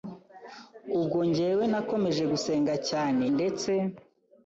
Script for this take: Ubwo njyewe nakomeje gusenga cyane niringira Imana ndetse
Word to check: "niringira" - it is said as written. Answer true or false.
false